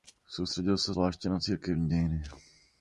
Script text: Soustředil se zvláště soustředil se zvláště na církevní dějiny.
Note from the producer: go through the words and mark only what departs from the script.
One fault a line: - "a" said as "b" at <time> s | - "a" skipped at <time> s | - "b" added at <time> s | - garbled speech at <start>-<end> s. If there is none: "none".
- "soustředil se zvláště" skipped at 1.3 s